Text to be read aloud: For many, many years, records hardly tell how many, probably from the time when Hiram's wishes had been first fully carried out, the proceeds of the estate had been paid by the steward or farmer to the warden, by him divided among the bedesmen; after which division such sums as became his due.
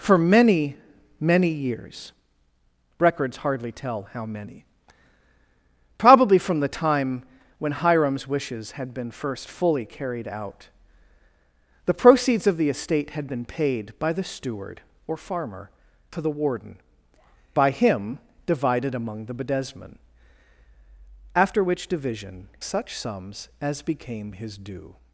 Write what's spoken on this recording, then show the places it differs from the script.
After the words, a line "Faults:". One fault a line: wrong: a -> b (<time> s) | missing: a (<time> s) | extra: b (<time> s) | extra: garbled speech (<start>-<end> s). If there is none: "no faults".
For many, many years, records hardly tell how many, probably from the time when Hiram's wishes had been first fully carried out, the proceeds of the estate had been paid by the steward or farmer to the warden, by him divided among the bedesmen; after which division such sums as became his due.
Faults:
no faults